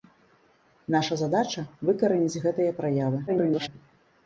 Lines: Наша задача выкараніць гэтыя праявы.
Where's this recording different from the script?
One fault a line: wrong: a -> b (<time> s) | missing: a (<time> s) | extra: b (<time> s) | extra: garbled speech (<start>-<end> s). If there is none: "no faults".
extra: garbled speech (3.3-3.7 s)